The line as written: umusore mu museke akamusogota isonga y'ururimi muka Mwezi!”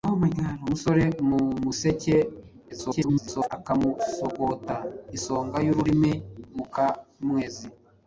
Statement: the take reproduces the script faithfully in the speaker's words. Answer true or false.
false